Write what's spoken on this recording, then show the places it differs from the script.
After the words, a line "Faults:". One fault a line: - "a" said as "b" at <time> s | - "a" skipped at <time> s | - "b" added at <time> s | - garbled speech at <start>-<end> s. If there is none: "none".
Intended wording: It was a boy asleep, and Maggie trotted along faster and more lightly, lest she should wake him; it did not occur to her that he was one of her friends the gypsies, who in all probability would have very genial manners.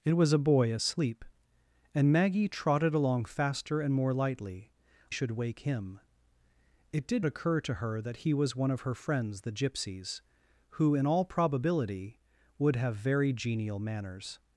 It was a boy asleep, and Maggie trotted along faster and more lightly, should wake him; it did occur to her that he was one of her friends the gypsies, who in all probability would have very genial manners.
Faults:
- "lest she" skipped at 4.7 s
- "not" skipped at 7.3 s